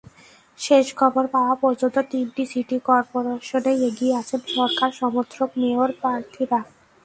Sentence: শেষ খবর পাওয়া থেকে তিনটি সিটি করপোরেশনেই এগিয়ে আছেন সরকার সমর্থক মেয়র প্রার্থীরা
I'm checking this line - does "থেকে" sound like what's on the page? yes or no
no